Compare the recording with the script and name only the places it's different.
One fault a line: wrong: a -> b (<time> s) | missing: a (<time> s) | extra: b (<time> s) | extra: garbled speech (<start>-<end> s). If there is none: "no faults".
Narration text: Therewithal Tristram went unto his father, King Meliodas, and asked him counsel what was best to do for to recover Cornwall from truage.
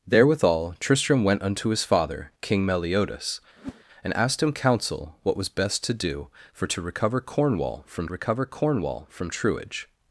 extra: recover Cornwall from (8.1 s)